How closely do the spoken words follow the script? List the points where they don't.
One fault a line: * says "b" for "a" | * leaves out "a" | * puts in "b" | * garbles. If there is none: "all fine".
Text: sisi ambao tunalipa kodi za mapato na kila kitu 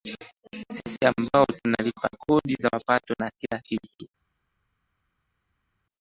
all fine